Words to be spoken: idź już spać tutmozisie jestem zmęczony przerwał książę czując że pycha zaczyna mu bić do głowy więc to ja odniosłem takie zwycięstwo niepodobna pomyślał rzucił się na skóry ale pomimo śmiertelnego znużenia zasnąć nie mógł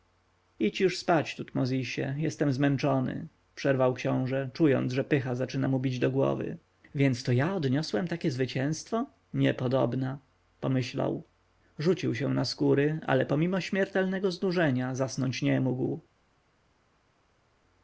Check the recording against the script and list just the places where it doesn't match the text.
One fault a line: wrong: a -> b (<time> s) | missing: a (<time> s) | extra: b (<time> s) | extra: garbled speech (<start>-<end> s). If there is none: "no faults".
no faults